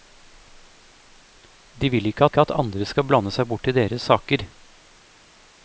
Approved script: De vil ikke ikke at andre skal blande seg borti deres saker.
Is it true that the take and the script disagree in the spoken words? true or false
false